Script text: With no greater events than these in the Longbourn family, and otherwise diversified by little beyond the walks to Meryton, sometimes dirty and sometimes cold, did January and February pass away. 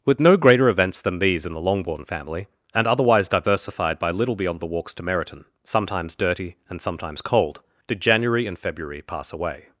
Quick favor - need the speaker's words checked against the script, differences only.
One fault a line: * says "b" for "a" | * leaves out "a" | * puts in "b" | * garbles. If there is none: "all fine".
all fine